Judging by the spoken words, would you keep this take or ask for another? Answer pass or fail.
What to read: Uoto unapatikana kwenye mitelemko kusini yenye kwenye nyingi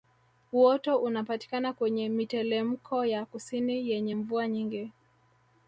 fail